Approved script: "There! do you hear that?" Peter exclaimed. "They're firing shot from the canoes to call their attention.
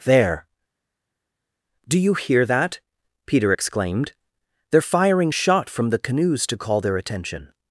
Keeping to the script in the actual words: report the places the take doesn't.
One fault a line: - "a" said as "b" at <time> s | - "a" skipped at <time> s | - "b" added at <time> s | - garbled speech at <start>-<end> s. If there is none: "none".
none